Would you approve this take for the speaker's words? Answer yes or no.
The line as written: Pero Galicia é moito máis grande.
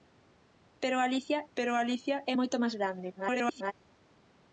no